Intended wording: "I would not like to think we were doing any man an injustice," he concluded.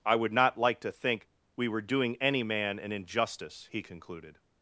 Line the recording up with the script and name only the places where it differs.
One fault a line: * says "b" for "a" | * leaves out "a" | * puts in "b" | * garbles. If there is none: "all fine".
all fine